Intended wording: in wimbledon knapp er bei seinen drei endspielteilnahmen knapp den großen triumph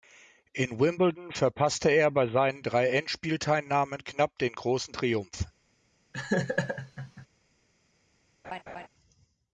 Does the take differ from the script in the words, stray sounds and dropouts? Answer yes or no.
yes